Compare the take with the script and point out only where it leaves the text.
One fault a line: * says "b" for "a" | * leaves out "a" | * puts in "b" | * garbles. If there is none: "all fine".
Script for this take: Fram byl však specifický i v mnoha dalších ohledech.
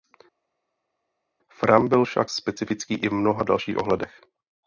all fine